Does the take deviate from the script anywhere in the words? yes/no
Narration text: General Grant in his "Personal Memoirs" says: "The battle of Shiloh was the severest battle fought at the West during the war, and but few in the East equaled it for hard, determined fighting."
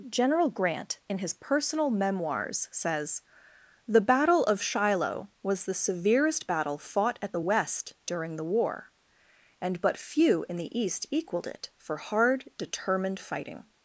no